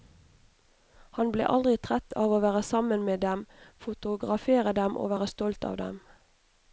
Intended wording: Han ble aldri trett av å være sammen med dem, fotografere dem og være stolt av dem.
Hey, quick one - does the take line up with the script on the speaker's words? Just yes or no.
yes